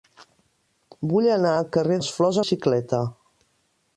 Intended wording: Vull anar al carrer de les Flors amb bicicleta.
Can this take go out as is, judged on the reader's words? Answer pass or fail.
fail